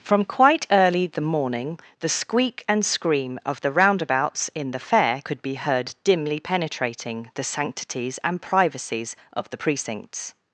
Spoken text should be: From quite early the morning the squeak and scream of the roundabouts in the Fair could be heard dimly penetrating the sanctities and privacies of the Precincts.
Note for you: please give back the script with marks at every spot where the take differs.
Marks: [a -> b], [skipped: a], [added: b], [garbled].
From quite early the morning the squeak and scream of the roundabouts in the Fair could be heard dimly penetrating the sanctities and privacies of the Precincts.